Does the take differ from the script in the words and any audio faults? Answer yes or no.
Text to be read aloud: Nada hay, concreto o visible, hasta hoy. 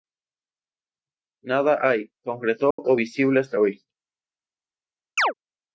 yes